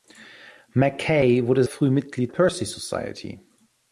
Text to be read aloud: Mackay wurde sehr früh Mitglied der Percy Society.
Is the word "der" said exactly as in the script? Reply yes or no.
no